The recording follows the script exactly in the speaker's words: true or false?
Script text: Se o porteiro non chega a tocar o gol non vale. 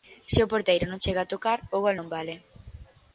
true